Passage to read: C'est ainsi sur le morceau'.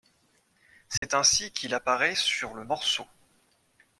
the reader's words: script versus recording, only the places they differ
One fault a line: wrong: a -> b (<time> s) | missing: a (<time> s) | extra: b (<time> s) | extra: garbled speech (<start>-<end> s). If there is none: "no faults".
extra: qu'il apparaît (1.5 s)